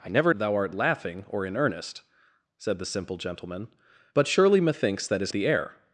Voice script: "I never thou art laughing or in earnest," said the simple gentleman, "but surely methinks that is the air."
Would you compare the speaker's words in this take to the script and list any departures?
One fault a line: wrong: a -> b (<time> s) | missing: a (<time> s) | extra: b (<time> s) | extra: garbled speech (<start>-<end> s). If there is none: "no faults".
no faults